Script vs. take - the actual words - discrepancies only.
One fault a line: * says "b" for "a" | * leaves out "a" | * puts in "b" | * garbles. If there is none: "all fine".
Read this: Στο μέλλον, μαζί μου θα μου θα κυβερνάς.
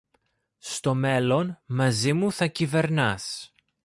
* leaves out "μου θα"